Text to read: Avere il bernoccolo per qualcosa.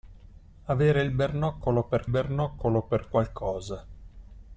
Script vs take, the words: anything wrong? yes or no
yes